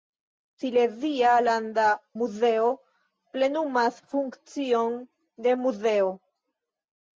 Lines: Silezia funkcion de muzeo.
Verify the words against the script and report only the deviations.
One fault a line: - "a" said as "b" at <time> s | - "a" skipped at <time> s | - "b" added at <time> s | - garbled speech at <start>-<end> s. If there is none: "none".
- "landa muzeo plenumas" added at 1.5 s